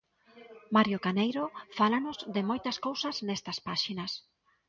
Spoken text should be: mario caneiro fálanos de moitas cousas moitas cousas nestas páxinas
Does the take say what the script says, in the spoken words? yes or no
no